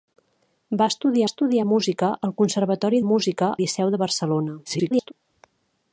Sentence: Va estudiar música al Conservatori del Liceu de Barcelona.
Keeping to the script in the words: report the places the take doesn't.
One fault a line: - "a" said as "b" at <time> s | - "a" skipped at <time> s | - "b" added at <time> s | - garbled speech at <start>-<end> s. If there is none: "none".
- "estudiar" added at 1.3 s
- "del" said as "música" at 3.1 s
- garbled speech at 4.6-5.1 s